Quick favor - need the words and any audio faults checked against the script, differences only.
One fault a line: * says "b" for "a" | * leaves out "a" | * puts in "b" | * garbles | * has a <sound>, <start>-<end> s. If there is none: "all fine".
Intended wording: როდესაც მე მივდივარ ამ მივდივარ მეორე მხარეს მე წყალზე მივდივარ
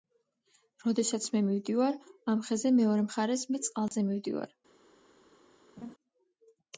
* says "ხეზე" for "მივდივარ"
* has a dropout, 3.9-3.9 s
* has a laugh, 5.8-5.9 s